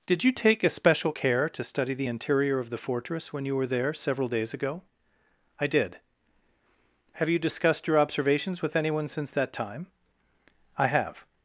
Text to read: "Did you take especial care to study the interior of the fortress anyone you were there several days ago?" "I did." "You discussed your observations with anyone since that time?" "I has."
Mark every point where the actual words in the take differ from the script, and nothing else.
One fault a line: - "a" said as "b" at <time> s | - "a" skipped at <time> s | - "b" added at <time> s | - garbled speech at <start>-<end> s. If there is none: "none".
- "anyone" said as "when" at 3.3 s
- "Have" added at 7.1 s
- "has" said as "have" at 10.9 s